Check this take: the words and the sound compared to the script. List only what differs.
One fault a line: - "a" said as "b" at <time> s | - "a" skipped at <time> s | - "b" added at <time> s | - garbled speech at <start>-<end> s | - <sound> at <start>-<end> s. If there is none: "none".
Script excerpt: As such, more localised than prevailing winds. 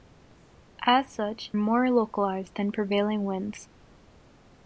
none